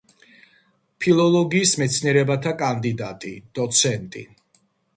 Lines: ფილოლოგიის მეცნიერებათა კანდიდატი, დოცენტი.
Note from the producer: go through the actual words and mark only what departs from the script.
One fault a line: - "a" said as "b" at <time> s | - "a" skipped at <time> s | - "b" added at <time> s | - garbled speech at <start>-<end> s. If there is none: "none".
none